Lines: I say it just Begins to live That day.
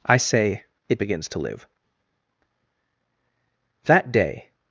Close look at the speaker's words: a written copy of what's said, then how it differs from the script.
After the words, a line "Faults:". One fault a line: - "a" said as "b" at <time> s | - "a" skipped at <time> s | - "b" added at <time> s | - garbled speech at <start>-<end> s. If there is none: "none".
I say it Begins to live That day.
Faults:
- "just" skipped at 1.0 s